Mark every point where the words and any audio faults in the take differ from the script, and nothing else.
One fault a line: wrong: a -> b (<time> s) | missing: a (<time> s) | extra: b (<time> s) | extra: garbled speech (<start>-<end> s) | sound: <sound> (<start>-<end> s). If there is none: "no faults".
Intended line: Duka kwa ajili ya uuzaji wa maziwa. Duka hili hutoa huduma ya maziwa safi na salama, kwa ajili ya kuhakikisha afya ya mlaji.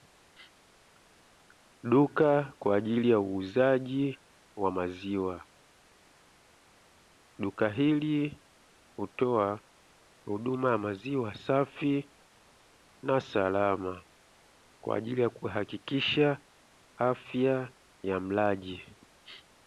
no faults